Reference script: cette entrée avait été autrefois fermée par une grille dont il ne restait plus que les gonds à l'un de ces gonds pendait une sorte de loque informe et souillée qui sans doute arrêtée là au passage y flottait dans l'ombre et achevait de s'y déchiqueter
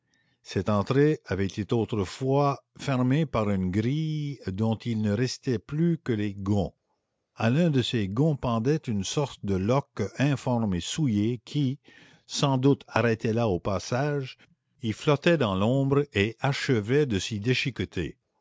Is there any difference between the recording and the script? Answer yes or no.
no